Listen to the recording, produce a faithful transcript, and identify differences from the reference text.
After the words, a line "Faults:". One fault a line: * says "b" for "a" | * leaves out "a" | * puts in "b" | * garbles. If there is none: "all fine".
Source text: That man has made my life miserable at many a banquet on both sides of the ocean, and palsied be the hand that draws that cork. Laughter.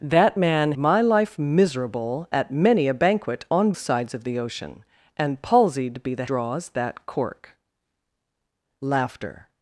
That man my life miserable at many a banquet on sides of the ocean, and palsied be the draws that cork. Laughter.
Faults:
* leaves out "has made"
* leaves out "both"
* leaves out "hand that"